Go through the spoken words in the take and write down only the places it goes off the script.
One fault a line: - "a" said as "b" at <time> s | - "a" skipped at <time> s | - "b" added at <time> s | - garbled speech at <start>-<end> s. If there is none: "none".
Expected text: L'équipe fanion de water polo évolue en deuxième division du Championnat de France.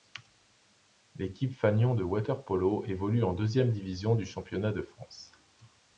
none